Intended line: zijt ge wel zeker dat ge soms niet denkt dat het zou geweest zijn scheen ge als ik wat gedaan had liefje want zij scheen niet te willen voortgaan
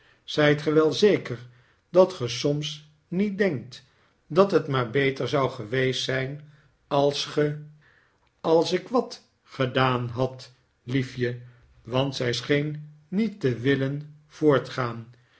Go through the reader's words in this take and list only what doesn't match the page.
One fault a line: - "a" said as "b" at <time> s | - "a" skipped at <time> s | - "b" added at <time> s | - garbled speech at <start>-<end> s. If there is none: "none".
- "maar beter" added at 4.7 s
- "scheen" said as "als" at 6.9 s